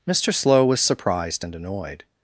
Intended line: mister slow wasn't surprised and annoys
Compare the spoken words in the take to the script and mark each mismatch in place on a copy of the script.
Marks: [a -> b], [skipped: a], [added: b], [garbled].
mister slow [wasn't -> was] surprised and [annoys -> annoyed]